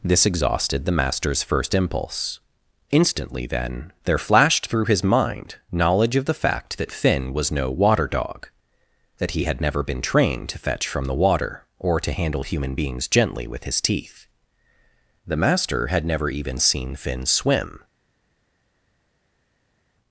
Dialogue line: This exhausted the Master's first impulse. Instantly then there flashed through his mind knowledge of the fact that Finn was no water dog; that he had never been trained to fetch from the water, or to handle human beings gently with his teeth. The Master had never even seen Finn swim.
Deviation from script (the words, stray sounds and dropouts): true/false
false